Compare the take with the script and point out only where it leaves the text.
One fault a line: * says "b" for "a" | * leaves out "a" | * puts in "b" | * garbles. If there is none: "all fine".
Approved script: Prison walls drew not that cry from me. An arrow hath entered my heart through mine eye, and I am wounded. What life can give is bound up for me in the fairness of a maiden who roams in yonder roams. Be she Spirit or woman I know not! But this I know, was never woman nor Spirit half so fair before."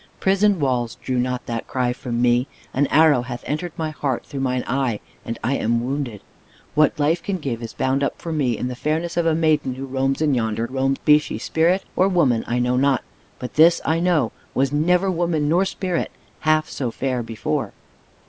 all fine